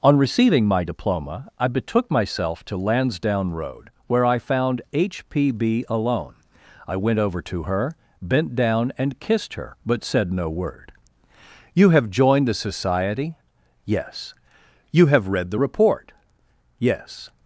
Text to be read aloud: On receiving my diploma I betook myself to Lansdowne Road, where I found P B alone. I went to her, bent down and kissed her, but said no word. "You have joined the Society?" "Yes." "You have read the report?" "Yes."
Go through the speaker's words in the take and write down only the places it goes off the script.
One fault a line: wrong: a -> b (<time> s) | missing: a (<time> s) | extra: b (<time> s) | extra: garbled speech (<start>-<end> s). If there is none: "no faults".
extra: H (4.9 s)
extra: over (7.2 s)